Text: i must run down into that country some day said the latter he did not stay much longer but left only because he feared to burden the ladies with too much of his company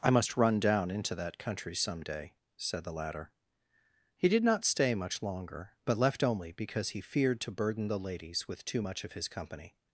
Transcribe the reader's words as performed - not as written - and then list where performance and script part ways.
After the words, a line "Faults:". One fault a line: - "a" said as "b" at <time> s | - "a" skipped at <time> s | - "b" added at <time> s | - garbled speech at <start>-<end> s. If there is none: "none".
i must run down into that country some day said the latter he did not stay much longer but left only because he feared to burden the ladies with too much of his company
Faults:
none